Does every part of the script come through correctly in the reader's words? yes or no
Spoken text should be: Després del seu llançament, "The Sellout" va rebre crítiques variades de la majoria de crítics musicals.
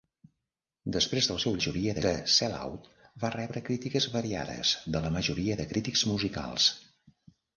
no